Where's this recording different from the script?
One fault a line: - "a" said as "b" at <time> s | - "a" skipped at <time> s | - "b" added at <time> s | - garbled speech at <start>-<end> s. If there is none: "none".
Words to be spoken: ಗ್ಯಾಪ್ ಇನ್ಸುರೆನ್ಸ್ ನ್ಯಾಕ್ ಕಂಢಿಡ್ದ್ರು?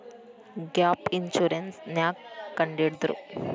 none